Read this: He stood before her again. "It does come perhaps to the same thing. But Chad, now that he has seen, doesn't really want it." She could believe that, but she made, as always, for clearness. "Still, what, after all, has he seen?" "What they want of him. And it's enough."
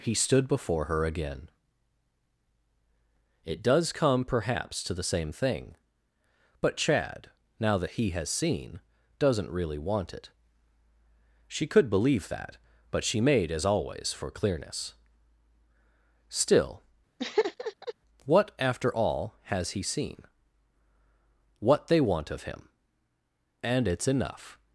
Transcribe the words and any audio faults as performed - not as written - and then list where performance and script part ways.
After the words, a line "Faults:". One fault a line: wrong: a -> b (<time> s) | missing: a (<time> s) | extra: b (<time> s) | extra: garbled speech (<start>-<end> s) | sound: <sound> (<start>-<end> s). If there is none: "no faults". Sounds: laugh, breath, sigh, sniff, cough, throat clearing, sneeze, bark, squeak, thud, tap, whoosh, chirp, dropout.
He stood before her again. "It does come perhaps to the same thing. But Chad, now that he has seen, doesn't really want it." She could believe that, but she made, as always, for clearness. "Still, what, after all, has he seen?" "What they want of him. And it's enough."
Faults:
sound: laugh (17.2-17.9 s)